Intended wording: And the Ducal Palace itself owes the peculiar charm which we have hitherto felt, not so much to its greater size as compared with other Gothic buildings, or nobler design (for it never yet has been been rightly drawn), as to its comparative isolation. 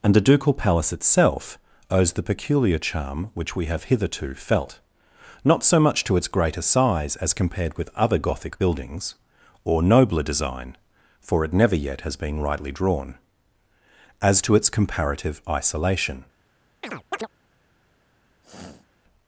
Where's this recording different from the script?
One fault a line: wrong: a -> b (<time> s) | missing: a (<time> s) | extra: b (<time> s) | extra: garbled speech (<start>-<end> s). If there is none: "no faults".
missing: been (12.4 s)